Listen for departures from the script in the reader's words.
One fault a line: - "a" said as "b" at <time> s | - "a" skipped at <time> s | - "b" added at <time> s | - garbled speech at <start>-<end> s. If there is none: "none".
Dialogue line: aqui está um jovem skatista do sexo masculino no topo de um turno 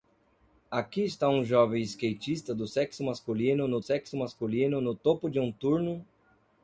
- "sexo masculino no" added at 3.8 s